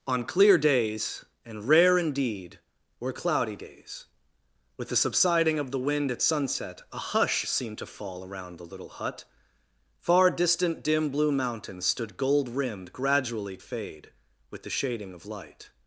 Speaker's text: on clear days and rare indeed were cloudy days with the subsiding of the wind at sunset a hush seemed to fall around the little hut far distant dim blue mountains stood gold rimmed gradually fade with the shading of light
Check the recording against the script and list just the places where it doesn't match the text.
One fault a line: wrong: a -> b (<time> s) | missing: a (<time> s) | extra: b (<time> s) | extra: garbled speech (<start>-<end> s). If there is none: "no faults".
no faults